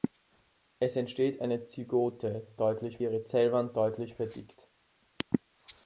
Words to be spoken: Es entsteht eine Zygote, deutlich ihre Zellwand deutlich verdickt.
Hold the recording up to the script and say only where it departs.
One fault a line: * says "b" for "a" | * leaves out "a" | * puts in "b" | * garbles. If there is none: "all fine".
all fine